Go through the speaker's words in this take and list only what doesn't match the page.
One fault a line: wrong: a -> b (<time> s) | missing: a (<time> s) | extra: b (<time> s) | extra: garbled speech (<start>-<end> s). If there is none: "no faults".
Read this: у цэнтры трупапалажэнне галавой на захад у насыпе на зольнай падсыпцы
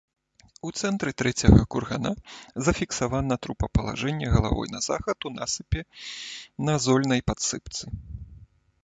extra: трэцяга кургана зафіксавана (1.2 s)